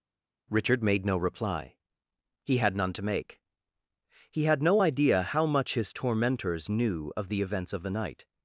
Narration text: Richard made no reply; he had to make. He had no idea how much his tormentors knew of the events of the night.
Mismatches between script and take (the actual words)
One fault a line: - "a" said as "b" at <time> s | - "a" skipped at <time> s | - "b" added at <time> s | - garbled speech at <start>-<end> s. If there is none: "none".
- "none" added at 2.7 s